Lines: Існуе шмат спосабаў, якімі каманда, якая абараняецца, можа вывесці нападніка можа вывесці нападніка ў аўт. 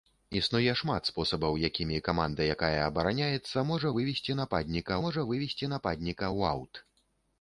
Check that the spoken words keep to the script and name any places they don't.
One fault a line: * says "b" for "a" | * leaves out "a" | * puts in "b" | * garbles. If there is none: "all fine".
all fine